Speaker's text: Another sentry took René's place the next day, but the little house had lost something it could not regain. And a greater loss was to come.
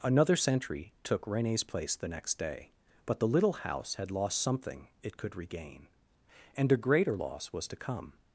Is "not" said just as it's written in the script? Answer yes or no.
no